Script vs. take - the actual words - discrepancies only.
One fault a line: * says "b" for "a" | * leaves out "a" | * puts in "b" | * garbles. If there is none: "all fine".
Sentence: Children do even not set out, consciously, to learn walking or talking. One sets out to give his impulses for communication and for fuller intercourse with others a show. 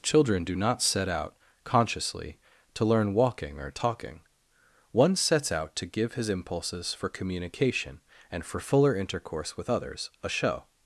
* leaves out "even"